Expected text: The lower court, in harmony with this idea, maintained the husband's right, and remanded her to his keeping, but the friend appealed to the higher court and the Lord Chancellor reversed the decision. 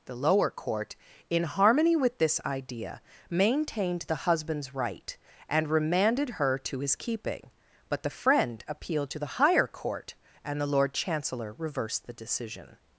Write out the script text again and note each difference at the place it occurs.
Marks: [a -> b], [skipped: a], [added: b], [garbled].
The lower court, in harmony with this idea, maintained the husband's right, and remanded her to his keeping, but the friend appealed to the higher court and the Lord Chancellor reversed the decision.